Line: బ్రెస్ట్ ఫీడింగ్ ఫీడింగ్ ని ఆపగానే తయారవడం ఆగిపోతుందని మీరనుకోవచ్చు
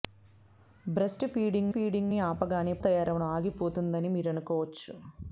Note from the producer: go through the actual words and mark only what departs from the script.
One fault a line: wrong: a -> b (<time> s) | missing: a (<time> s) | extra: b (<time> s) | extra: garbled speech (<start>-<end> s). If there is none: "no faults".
no faults